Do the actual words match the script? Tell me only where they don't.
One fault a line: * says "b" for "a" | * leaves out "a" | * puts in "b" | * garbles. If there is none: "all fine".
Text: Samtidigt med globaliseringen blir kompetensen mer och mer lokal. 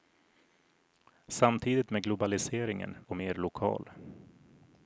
* leaves out "blir kompetensen mer"